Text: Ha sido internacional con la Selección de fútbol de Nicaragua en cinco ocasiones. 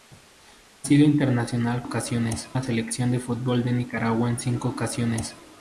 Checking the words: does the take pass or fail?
fail